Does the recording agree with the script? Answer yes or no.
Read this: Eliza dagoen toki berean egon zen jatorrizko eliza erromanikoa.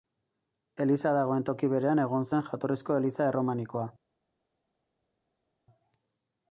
yes